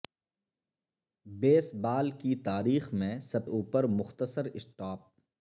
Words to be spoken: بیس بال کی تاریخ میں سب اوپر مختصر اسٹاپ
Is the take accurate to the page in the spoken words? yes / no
yes